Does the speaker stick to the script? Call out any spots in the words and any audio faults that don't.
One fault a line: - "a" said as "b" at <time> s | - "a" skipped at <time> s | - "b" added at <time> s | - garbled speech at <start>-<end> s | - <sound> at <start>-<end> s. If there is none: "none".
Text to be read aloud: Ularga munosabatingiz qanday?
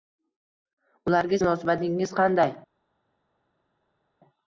none